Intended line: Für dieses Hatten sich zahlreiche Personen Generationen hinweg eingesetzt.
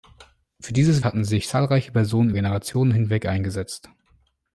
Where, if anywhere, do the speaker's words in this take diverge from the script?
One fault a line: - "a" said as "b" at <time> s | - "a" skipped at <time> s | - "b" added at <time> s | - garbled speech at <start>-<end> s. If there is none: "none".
none